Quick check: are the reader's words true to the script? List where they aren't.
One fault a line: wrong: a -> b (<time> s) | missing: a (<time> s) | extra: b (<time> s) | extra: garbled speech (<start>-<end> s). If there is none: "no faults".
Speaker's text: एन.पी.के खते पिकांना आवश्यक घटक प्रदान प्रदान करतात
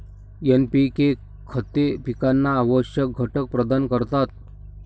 missing: प्रदान (3.9 s)